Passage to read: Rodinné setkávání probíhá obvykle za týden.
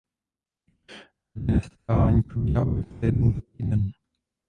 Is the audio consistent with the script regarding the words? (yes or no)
no